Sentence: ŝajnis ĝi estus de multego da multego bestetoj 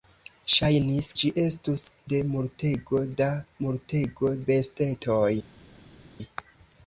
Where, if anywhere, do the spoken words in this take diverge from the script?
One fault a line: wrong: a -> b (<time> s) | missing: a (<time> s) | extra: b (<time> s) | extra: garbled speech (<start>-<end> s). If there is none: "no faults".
no faults